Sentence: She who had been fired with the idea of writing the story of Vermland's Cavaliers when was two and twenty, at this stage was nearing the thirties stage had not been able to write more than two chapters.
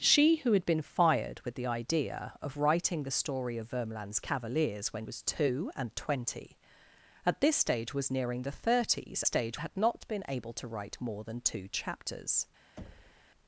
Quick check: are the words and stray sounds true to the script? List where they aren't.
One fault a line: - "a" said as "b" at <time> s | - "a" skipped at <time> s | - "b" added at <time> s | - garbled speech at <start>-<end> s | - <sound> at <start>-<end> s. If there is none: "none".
- thud at 12.8-13.3 s